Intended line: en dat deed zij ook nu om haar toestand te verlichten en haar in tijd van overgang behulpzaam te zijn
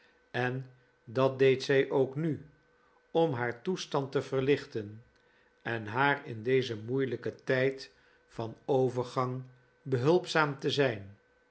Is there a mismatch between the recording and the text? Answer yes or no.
yes